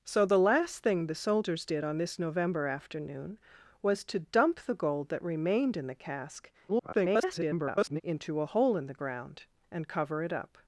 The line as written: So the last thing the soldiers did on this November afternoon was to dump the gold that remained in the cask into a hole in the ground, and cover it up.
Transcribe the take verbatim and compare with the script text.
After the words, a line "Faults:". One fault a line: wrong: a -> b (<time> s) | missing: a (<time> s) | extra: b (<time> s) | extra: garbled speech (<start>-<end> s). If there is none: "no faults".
So the last thing the soldiers did on this November afternoon was to dump the gold that remained in the cask [garbled] into a hole in the ground, and cover it up.
Faults:
extra: garbled speech (6.7-8.0 s)